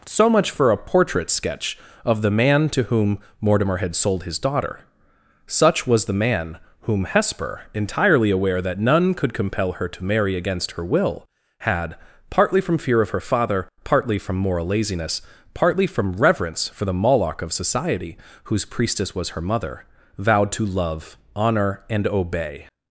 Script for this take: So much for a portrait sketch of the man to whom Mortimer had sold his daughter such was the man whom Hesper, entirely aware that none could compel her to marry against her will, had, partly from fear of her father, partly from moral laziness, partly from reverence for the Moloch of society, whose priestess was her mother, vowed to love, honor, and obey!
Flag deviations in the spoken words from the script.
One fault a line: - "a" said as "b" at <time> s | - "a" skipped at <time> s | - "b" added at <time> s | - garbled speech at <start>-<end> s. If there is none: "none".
none